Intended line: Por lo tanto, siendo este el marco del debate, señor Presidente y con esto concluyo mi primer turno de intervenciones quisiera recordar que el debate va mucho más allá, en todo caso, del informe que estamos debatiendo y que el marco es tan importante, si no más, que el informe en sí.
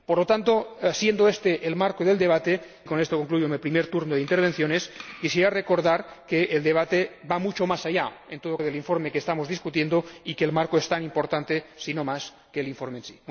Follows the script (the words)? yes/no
no